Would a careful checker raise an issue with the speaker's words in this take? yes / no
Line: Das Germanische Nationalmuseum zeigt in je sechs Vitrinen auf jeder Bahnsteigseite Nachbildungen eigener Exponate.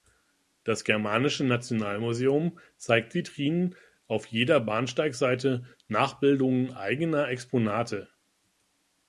yes